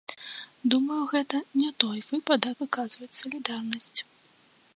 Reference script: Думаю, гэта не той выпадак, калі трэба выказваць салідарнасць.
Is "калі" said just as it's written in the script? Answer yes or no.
no